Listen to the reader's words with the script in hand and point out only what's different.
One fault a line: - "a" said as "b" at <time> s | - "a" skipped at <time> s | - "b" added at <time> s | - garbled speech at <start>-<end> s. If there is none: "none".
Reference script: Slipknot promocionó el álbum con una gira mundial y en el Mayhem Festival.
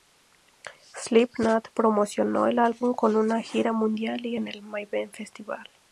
none